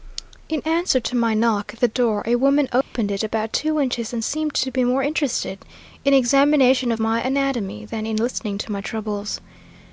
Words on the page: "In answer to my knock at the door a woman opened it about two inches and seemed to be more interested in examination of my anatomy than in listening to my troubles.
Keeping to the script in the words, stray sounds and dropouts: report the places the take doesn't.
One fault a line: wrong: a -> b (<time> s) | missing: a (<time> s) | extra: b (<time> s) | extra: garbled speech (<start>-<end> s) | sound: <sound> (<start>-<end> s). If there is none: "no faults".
sound: dropout (2.8-2.9 s)